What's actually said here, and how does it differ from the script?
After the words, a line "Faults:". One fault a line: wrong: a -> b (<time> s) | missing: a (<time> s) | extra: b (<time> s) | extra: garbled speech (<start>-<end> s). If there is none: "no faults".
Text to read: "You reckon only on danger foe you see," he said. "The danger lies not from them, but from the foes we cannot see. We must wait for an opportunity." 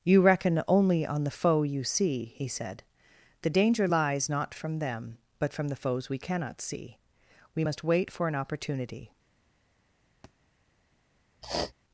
"You reckon only on the foe you see," he said. "The danger lies not from them, but from the foes we cannot see. We must wait for an opportunity."
Faults:
wrong: danger -> the (1.2 s)